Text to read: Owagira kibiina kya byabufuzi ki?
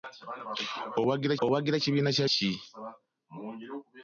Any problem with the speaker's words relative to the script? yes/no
yes